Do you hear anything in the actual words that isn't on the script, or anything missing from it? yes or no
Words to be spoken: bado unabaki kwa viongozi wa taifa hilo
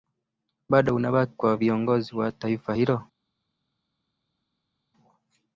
no